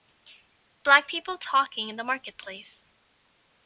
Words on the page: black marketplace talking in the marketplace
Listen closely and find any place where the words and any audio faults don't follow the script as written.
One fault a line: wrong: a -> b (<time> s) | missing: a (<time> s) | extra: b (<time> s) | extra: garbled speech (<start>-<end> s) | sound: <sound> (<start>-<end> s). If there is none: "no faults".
wrong: marketplace -> people (1.1 s)